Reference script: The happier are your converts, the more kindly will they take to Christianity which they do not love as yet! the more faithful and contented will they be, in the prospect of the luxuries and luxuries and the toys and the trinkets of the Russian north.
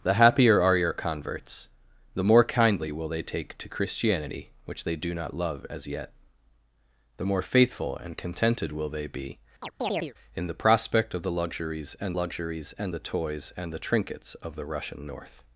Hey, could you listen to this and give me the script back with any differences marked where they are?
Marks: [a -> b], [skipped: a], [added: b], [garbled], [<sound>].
The happier are your converts, the more kindly will they take to Christianity which they do not love as yet! the more faithful and contented will they be, [chirp] in the prospect of the luxuries and luxuries and the toys and the trinkets of the Russian north.